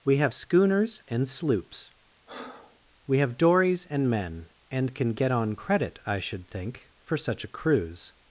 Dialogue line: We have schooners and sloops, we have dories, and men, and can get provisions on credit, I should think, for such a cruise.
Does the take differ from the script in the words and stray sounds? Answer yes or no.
yes